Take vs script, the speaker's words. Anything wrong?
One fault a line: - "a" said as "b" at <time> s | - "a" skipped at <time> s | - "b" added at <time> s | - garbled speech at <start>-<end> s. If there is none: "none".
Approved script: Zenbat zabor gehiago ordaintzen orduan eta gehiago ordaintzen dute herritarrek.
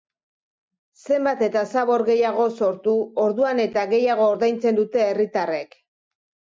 - "eta" added at 1.5 s
- "ordaintzen" said as "sortu" at 2.6 s